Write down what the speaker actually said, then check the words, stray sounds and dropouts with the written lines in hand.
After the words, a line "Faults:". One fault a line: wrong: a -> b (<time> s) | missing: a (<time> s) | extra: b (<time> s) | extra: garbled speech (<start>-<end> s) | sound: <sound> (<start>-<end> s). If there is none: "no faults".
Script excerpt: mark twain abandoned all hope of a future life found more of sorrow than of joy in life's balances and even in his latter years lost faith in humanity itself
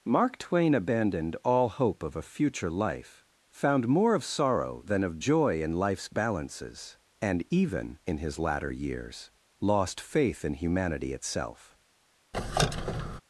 mark twain abandoned all hope of a future life found more of sorrow than of joy in life's balances and even in his latter years lost faith in humanity itself
Faults:
sound: squeak (12.3-13.2 s)